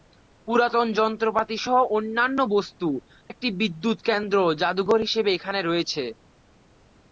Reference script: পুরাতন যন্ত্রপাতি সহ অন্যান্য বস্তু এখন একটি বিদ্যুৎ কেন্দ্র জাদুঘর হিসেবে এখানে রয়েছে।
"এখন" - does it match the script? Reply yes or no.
no